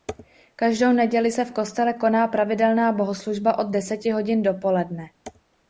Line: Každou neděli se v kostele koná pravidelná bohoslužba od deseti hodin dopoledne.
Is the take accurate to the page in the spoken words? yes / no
yes